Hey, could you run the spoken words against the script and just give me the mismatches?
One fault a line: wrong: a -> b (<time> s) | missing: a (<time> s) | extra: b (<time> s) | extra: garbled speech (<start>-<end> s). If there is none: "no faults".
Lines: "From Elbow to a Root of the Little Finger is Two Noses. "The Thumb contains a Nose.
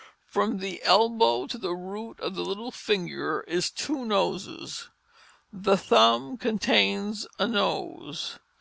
extra: the (0.6 s)
wrong: a -> the (1.6 s)